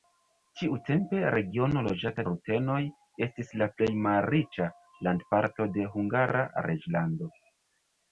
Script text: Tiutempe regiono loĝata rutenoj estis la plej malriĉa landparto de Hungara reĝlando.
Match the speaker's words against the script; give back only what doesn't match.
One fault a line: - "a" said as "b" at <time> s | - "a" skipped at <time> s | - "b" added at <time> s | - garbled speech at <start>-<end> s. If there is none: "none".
none